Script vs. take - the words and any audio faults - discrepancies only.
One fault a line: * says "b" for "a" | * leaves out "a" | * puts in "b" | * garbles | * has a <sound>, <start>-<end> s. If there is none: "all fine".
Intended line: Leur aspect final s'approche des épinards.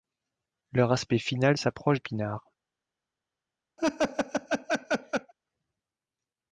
* leaves out "des"
* has a laugh, 3.8-5.3 s